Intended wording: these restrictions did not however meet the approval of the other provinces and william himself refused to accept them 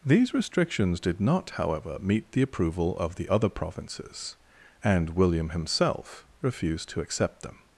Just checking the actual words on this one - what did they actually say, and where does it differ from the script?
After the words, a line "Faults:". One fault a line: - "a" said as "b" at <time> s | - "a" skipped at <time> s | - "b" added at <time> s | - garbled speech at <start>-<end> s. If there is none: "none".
these restrictions did not however meet the approval of the other provinces and william himself refused to accept them
Faults:
none